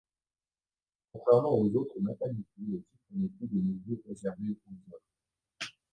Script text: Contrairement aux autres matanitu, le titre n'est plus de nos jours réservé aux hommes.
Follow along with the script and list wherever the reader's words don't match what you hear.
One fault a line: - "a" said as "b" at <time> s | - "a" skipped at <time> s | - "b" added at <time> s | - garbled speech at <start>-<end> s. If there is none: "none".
none